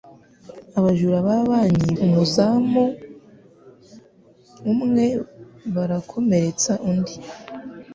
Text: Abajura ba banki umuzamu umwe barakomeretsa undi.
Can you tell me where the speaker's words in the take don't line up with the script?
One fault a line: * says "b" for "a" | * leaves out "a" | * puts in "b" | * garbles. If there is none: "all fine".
all fine